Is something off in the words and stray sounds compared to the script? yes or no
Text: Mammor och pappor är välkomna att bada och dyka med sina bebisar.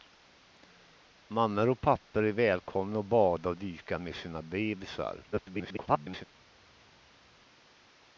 yes